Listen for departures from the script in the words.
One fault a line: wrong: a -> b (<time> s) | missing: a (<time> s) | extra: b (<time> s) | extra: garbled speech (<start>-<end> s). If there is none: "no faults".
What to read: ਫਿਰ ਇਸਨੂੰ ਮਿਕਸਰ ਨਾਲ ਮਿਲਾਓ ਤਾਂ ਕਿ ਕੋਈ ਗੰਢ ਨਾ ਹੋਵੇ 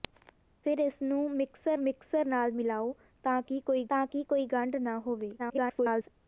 extra: ਮਿਕਸਰ (1.8 s)
extra: ਤਾਂ ਕਿ ਕੋਈ (3.9 s)
extra: garbled speech (5.4-6.1 s)